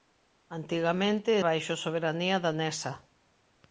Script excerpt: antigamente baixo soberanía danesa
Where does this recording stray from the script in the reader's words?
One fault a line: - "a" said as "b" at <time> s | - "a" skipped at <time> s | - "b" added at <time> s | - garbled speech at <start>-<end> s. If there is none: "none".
none